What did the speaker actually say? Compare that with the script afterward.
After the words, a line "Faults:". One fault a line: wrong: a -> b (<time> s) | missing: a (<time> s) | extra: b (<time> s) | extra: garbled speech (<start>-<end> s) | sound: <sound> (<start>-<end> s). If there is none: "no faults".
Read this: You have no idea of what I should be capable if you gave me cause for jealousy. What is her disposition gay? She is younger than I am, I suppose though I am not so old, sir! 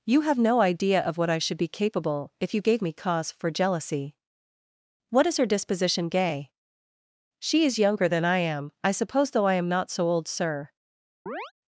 You have no idea of what I should be capable if you gave me cause for jealousy. What is her disposition gay? She is younger than I am, I suppose though I am not so old, sir!
Faults:
sound: chirp (11.3-11.5 s)